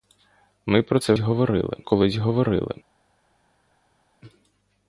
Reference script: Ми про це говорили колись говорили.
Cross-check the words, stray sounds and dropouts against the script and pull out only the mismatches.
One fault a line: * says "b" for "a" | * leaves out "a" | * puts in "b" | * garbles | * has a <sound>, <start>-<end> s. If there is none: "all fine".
all fine